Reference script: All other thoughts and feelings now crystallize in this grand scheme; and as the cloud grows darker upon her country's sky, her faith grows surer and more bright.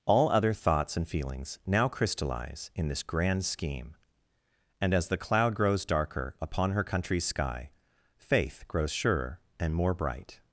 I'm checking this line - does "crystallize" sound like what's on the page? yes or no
yes